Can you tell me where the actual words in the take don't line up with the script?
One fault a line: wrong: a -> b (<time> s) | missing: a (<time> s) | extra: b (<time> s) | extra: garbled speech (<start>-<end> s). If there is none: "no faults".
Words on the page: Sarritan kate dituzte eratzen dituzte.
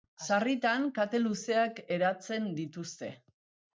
wrong: dituzte -> luzeak (1.2 s)